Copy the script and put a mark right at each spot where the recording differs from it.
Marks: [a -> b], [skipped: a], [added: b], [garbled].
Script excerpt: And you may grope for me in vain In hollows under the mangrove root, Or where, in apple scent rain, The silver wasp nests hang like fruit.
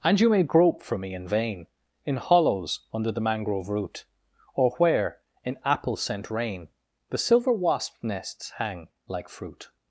And you may grope for me in vain In hollows under the mangrove root, Or where, in apple scent rain, The silver wasp nests hang like fruit.